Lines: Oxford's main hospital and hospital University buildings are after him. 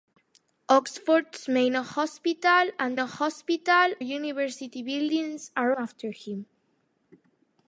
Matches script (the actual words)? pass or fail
pass